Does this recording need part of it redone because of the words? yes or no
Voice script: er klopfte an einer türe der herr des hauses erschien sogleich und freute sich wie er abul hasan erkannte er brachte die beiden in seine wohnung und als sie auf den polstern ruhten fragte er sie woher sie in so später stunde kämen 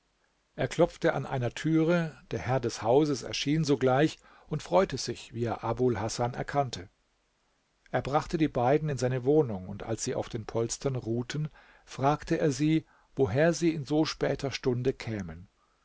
no